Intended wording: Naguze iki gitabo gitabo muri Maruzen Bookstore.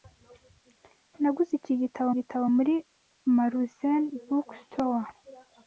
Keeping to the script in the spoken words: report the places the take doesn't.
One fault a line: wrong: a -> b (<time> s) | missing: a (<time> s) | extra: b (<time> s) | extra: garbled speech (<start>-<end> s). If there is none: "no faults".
no faults